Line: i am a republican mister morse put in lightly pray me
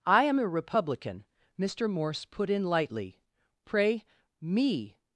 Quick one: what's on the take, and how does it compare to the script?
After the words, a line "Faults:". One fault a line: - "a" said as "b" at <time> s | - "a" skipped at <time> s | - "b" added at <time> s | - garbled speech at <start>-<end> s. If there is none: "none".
i am a republican mister morse put in lightly pray me
Faults:
none